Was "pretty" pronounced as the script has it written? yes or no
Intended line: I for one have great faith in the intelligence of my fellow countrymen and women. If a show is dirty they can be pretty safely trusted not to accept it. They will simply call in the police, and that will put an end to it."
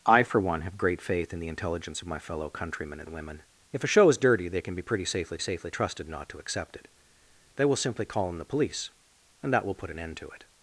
yes